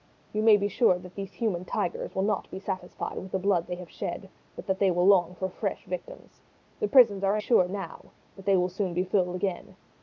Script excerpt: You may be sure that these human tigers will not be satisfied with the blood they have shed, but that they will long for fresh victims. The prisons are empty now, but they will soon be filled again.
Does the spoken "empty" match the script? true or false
false